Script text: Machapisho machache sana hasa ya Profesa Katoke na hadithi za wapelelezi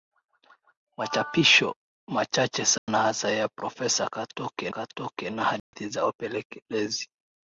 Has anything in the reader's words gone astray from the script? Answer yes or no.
yes